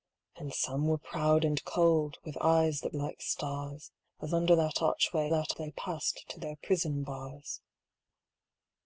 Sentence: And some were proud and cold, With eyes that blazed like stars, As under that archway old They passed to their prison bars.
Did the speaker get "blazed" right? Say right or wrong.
wrong